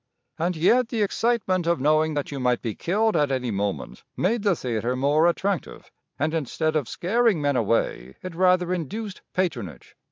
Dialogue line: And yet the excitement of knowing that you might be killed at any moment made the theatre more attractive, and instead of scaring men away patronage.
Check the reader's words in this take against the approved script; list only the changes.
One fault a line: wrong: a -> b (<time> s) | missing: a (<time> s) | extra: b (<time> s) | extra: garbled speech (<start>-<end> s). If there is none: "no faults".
extra: it rather induced (8.2 s)